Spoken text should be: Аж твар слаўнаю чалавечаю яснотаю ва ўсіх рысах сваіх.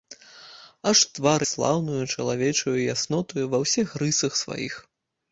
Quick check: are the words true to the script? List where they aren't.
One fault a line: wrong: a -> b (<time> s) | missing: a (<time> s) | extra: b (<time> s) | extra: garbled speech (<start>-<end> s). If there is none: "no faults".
no faults